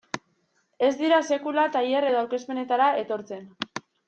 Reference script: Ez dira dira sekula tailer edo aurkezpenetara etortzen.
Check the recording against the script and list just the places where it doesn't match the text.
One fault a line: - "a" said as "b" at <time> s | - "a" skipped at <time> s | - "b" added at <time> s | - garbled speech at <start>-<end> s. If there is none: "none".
- "dira" skipped at 1.2 s